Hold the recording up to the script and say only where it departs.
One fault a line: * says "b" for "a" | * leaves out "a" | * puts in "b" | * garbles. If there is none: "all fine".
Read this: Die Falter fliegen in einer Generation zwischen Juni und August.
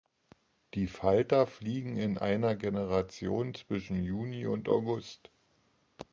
all fine